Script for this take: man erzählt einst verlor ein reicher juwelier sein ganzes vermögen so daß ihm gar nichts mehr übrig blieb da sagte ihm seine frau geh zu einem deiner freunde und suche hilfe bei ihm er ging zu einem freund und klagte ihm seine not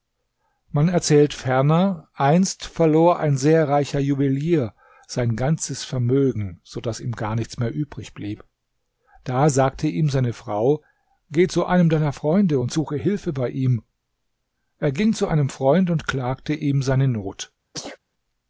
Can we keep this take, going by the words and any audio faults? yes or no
no